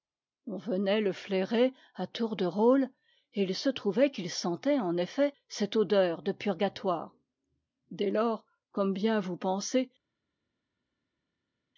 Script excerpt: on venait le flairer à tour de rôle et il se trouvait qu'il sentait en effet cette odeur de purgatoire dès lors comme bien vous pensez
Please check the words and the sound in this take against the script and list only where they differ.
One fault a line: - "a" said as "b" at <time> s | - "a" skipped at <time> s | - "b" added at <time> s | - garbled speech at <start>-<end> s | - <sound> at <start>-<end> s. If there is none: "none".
none